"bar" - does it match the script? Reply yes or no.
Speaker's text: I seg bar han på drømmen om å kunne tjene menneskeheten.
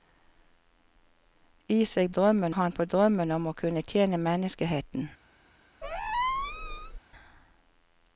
no